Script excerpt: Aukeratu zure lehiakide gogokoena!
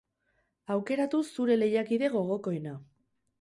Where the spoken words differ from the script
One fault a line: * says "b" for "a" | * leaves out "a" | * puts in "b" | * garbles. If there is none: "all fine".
all fine